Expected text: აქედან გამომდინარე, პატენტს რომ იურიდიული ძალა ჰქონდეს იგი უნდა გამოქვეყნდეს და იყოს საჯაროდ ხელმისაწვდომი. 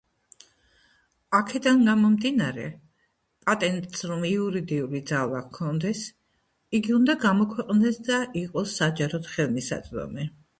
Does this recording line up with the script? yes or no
yes